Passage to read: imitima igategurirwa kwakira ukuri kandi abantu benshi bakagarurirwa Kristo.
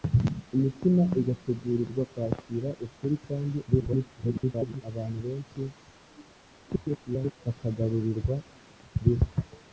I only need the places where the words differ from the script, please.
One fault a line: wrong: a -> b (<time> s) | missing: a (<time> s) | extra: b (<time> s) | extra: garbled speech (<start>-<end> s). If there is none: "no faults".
extra: garbled speech (3.7-4.8 s)
extra: garbled speech (6.7-7.3 s)